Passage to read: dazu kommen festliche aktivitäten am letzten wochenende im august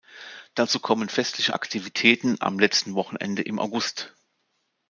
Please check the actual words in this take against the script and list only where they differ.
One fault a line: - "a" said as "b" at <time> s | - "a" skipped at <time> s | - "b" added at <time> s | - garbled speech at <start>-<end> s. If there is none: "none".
none